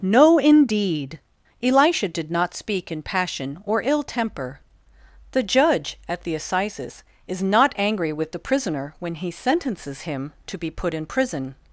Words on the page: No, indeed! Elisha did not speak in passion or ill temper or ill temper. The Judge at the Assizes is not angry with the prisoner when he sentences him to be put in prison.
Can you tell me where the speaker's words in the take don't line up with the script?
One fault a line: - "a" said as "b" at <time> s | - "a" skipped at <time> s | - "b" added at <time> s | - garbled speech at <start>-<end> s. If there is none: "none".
- "or ill temper" skipped at 4.6 s